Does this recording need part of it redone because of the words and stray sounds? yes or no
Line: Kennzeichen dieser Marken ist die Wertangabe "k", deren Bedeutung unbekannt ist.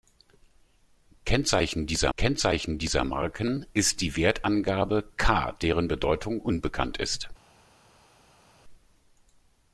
yes